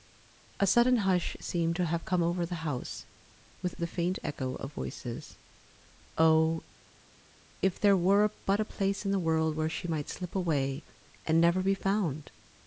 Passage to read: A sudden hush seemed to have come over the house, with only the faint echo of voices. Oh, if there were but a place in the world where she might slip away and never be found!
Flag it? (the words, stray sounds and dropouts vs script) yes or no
yes